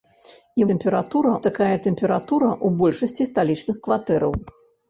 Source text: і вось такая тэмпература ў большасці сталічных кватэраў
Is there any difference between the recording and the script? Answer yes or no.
yes